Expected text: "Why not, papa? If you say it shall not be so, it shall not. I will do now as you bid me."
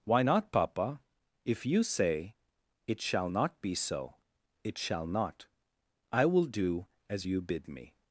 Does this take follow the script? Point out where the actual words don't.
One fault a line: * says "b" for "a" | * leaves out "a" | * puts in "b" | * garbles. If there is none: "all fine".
* leaves out "now"